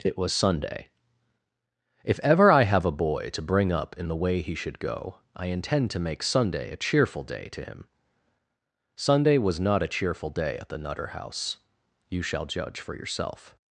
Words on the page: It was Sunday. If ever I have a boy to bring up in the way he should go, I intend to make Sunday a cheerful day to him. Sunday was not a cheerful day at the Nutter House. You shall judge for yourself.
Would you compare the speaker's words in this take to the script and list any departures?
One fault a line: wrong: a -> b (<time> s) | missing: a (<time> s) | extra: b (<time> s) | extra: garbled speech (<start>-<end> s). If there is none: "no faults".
no faults